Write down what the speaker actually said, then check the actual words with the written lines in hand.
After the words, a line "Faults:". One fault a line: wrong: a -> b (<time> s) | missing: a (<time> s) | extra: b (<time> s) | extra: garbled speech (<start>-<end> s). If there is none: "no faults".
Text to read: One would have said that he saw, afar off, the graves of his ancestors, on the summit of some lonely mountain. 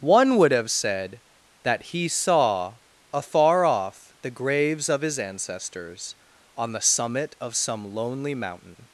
One would have said that he saw, afar off, the graves of his ancestors, on the summit of some lonely mountain.
Faults:
no faults